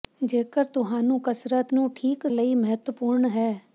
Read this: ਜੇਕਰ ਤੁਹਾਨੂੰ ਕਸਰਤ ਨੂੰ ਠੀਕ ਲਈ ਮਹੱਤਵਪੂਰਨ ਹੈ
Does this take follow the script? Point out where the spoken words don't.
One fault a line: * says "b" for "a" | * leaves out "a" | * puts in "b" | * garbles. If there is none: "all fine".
all fine